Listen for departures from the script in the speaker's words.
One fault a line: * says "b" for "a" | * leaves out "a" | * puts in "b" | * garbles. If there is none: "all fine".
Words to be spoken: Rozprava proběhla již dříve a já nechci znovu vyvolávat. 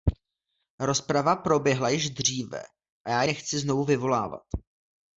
all fine